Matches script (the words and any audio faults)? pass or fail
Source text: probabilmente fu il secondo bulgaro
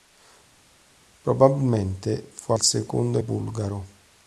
pass